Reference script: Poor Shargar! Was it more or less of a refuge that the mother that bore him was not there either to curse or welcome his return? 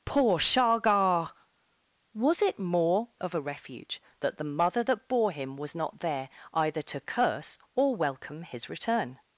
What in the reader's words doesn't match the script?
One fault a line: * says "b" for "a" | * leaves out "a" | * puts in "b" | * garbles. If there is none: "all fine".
* leaves out "or less"